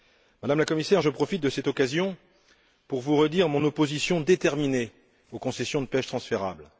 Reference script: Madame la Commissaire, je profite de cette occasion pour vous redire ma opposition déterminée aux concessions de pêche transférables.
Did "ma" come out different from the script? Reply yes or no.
yes